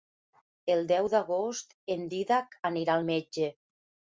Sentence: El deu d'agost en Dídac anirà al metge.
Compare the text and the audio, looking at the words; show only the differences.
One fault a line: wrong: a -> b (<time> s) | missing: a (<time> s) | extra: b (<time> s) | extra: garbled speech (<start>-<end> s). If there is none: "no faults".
no faults